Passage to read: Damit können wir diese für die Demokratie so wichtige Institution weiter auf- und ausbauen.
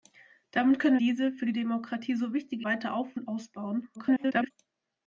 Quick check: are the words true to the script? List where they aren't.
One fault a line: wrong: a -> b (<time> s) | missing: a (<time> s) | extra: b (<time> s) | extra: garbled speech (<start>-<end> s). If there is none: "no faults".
missing: wir (1.0 s)
missing: Institution (2.7 s)
extra: garbled speech (3.9-4.5 s)